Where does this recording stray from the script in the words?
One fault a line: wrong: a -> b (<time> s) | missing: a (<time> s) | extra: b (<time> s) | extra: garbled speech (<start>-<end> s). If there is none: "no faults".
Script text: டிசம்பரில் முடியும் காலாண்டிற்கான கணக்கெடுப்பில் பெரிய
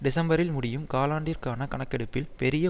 no faults